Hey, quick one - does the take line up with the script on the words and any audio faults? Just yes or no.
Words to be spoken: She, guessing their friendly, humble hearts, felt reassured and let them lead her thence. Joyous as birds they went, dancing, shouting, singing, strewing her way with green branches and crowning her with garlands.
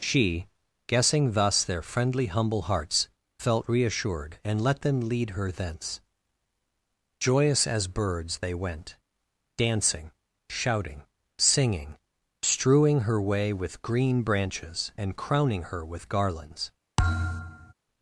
no